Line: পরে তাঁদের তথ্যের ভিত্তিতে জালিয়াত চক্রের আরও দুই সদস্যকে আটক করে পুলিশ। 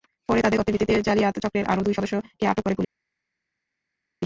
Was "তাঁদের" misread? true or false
false